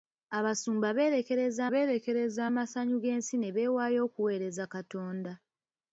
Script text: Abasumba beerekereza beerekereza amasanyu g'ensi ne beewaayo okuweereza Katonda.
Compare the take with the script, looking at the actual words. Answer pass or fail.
pass